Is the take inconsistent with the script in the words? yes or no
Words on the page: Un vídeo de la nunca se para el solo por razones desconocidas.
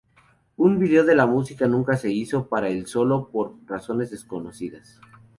yes